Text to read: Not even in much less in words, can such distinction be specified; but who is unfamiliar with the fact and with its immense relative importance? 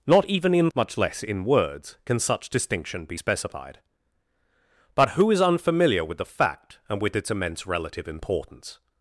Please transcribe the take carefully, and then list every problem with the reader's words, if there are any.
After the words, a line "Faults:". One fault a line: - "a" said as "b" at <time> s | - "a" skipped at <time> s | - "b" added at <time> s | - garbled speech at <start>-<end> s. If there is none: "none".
Not even in much less in words, can such distinction be specified; but who is unfamiliar with the fact and with its immense relative importance?
Faults:
none